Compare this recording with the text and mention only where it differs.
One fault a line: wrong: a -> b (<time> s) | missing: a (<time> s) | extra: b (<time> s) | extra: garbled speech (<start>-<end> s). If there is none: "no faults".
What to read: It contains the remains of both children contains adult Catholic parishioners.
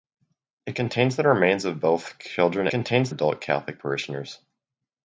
no faults